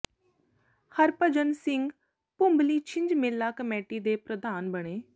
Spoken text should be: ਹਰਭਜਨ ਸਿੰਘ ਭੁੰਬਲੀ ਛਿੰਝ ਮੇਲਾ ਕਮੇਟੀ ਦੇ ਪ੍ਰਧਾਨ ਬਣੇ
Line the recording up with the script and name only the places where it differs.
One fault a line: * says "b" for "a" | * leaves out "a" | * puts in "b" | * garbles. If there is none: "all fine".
all fine